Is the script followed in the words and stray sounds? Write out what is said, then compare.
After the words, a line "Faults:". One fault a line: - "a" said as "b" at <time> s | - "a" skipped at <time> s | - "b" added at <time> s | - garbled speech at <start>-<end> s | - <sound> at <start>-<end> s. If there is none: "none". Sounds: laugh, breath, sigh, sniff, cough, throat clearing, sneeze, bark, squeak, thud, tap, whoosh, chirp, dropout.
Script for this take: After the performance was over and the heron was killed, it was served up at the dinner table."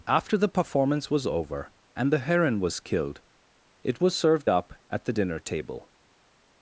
After the performance was over and the heron was killed, it was served up at the dinner table."
Faults:
none